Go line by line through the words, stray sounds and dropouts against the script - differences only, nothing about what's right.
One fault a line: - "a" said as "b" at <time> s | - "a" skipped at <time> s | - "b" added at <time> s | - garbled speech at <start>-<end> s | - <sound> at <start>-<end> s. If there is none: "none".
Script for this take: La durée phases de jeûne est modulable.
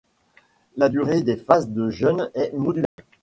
- "des" added at 1.2 s
- dropout at 2.9-3.0 s